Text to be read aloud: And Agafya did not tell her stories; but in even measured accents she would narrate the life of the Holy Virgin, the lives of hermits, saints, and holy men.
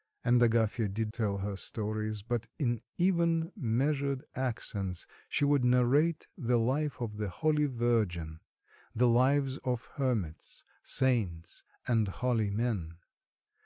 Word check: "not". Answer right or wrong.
wrong